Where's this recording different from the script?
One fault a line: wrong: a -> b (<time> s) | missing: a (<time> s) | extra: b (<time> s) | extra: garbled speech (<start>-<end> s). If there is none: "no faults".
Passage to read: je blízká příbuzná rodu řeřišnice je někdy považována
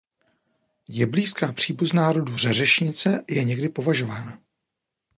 no faults